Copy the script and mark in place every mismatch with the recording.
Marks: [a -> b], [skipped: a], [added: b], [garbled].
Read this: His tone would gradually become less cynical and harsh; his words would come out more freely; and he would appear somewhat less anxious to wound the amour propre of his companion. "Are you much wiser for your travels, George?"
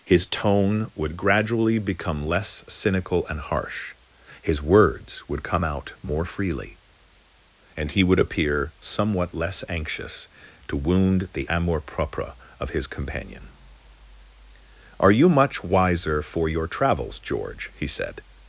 His tone would gradually become less cynical and harsh; his words would come out more freely; and he would appear somewhat less anxious to wound the amour propre of his companion. "Are you much wiser for your travels, George?" [added: he said]